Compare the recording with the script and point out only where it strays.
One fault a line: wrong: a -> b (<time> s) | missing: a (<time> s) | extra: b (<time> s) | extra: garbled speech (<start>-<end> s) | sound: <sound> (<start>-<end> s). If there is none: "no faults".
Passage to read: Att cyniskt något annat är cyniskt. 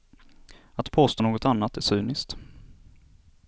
wrong: cyniskt -> påstå (0.9 s)